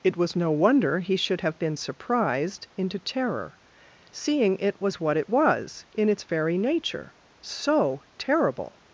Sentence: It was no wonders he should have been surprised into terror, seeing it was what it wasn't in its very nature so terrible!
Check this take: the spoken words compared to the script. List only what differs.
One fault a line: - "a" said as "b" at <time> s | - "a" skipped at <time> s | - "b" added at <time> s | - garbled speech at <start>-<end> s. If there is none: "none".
- "wonders" said as "wonder" at 0.5 s
- "wasn't" said as "was" at 5.3 s